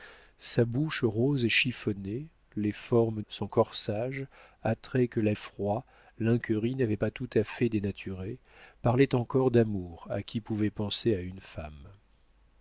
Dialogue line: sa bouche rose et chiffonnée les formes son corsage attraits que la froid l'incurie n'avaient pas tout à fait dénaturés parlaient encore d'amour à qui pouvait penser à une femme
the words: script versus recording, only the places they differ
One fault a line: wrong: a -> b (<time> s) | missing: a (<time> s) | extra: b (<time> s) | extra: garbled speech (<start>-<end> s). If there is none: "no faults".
no faults